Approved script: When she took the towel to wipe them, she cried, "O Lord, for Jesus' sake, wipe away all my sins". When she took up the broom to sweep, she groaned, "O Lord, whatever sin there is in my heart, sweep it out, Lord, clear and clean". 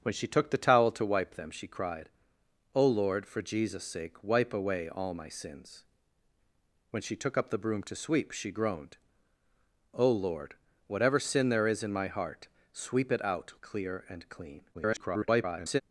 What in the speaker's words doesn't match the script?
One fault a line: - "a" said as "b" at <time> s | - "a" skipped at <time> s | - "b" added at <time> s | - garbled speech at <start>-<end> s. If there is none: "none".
- "Lord" skipped at 13.5 s
- garbled speech at 14.7-15.8 s